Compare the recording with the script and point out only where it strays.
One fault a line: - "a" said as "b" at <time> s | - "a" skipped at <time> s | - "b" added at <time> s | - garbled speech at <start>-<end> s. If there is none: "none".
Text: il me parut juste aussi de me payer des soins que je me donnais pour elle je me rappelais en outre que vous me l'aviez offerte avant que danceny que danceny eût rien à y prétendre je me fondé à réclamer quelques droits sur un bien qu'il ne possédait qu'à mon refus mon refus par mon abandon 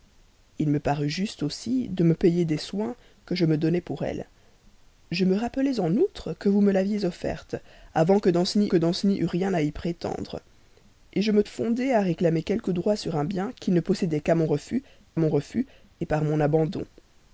none